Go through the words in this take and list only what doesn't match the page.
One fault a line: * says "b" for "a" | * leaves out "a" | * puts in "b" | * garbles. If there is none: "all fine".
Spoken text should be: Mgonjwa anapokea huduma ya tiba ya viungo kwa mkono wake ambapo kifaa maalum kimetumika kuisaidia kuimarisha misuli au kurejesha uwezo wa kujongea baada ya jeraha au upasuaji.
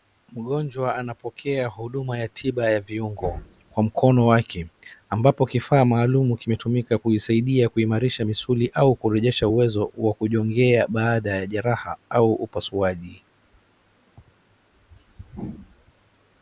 all fine